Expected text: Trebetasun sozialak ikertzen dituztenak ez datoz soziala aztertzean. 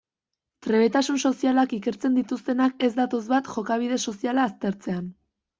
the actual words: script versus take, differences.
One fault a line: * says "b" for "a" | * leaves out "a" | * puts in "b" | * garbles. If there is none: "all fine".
* puts in "bat jokabide"